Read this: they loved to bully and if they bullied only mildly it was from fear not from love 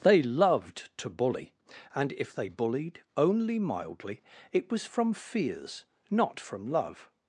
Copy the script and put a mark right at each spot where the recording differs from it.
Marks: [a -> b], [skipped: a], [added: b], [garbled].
they loved to bully and if they bullied only mildly it was from [fear -> fears] not from love